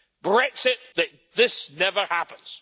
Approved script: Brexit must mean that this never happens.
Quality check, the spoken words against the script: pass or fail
fail